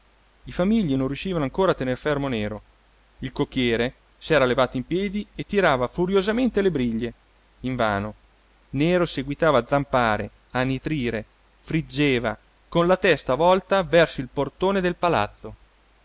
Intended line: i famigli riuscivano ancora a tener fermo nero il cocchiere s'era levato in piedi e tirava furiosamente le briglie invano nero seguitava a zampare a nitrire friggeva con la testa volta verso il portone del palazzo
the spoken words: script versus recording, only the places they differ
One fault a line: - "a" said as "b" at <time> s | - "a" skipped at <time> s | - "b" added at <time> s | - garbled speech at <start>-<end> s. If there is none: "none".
- "non" added at 0.9 s